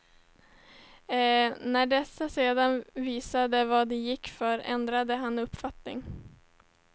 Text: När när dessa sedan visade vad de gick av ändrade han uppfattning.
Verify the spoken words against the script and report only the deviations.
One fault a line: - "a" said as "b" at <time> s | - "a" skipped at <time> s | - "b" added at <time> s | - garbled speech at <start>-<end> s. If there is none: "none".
- "när" skipped at 1.9 s
- "av" said as "för" at 4.3 s